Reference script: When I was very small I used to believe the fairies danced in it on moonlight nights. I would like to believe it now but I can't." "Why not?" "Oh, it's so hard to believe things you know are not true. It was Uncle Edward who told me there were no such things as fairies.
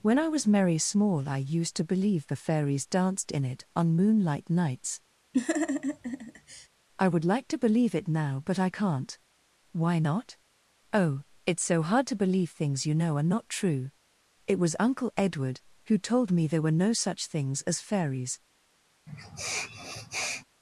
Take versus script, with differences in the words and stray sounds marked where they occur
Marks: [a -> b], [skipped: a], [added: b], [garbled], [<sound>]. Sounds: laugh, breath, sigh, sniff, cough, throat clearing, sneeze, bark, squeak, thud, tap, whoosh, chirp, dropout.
When I was [very -> merry] small I used to believe the fairies danced in it on moonlight nights. [laugh] I would like to believe it now but I can't." "Why not?" "Oh, it's so hard to believe things you know are not true. It was Uncle Edward who told me there were no such things as fairies. [sniff]